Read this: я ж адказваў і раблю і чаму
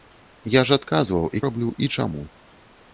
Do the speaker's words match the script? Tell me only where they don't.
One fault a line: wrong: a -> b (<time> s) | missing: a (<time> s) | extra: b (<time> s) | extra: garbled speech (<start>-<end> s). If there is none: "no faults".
no faults